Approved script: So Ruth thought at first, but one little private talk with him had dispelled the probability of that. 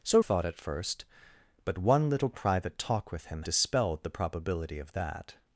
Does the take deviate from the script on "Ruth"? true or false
true